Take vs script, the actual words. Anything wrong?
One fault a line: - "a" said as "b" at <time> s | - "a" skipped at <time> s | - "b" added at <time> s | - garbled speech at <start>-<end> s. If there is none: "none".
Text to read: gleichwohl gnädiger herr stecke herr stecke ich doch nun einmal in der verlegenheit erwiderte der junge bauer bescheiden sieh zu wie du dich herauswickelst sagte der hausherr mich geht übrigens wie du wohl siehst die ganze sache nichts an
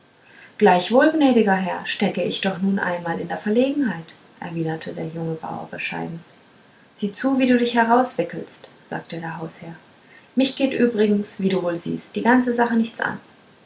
- "herr stecke" skipped at 2.2 s